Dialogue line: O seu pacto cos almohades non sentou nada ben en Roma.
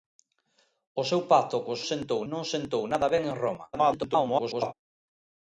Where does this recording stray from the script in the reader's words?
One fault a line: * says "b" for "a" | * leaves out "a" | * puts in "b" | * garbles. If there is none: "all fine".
* says "sentou" for "almohades"
* garbles